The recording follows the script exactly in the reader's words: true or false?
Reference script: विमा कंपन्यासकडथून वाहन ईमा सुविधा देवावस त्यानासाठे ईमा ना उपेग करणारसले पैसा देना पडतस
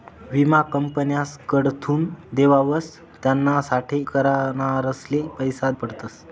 false